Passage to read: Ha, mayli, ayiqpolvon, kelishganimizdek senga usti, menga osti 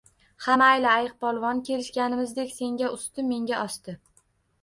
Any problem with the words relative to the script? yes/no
no